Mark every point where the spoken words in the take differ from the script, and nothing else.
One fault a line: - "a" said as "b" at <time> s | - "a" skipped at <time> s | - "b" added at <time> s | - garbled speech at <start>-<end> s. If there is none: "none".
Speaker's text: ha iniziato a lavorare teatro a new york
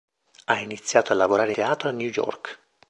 none